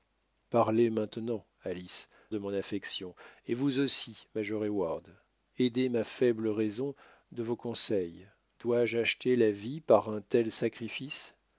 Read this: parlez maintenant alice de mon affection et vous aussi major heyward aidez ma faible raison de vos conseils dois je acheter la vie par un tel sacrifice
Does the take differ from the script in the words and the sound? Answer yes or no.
no